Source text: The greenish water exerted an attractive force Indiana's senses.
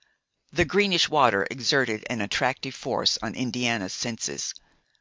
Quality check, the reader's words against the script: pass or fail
fail